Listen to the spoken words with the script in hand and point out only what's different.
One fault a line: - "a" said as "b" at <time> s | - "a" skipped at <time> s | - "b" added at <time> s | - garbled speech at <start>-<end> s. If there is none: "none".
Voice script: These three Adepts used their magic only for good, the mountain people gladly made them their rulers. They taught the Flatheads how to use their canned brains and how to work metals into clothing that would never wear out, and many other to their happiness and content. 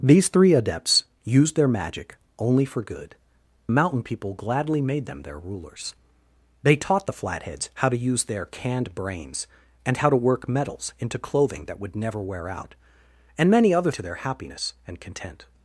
none